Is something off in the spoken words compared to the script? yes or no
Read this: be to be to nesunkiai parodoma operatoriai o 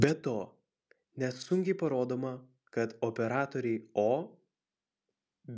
yes